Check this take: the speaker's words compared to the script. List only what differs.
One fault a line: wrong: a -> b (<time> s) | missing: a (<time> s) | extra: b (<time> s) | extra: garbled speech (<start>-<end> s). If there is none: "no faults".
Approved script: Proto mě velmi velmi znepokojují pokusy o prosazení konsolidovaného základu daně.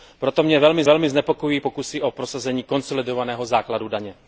no faults